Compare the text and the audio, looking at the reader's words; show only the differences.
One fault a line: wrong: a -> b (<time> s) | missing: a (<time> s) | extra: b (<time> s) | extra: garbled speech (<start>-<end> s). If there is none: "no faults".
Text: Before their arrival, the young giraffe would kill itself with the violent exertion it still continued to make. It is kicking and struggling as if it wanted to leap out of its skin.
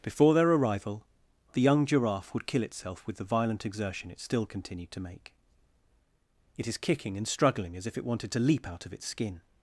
no faults